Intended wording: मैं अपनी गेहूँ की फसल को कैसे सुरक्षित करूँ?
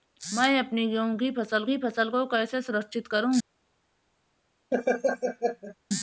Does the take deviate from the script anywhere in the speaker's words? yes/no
yes